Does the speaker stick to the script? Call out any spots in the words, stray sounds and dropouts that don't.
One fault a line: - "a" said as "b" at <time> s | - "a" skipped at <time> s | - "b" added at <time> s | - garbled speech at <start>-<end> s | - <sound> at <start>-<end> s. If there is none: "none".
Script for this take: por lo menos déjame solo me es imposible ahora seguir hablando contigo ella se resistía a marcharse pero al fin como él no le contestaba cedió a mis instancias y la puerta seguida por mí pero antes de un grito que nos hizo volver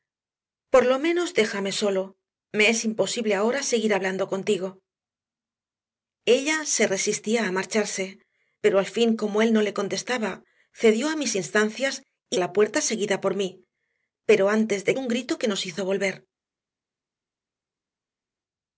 none